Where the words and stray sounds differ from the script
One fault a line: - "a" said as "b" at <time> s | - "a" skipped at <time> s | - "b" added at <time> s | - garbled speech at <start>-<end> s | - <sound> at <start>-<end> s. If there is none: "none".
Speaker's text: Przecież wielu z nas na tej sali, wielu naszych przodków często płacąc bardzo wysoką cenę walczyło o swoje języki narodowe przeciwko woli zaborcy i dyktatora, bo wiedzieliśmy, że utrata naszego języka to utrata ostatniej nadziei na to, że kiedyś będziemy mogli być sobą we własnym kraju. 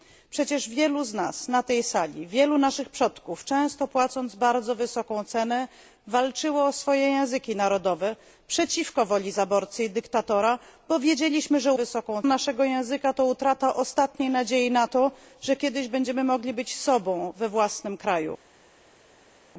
- "utrata" said as "wysoką" at 11.7 s